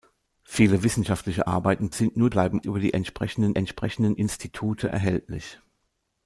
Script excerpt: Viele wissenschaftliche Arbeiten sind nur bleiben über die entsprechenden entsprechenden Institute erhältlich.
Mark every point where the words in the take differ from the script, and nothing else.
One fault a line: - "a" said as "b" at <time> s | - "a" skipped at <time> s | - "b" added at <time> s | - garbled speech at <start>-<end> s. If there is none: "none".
none